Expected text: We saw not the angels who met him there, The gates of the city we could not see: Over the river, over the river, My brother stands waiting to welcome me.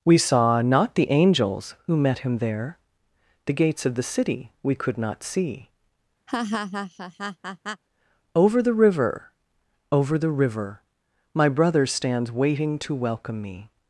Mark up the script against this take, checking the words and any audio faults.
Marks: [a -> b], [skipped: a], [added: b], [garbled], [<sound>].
We saw not the angels who met him there, The gates of the city we could not see: [laugh] Over the river, over the river, My brother stands waiting to welcome me.